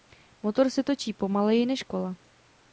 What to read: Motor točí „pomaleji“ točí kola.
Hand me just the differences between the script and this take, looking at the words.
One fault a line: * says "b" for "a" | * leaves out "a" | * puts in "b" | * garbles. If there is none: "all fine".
* puts in "se"
* says "než" for "točí"